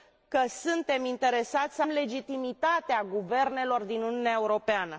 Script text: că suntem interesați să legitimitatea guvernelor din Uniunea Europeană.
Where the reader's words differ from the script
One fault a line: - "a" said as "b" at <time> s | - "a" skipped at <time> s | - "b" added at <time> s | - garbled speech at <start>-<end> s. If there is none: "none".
none